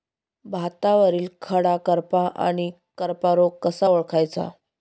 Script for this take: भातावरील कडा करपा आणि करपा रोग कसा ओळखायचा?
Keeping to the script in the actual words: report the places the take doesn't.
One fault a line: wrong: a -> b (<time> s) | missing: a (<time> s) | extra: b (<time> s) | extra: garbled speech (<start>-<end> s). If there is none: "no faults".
no faults